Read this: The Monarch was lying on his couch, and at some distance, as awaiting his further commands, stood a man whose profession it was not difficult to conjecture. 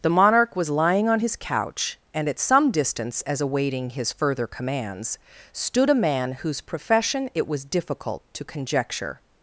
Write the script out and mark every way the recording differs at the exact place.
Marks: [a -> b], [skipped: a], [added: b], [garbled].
The Monarch was lying on his couch, and at some distance, as awaiting his further commands, stood a man whose profession it was [skipped: not] difficult to conjecture.